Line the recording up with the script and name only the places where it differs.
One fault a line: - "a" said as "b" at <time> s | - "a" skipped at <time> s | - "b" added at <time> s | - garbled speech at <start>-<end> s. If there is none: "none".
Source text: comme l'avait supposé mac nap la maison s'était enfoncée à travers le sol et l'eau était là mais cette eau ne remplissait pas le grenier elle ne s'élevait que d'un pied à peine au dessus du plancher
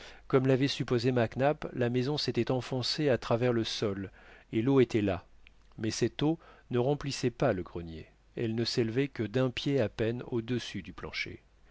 none